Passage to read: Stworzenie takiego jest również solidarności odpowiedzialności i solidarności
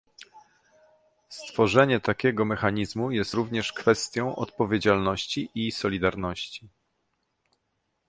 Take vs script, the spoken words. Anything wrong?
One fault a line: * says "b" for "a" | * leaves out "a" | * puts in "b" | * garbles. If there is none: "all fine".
* puts in "mechanizmu"
* says "kwestią" for "solidarności"